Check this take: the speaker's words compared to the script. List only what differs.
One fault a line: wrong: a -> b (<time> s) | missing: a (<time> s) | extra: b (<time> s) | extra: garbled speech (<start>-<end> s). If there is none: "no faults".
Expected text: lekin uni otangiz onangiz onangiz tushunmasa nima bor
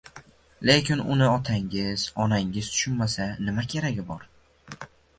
missing: onangiz (2.6 s)
extra: keragi (3.8 s)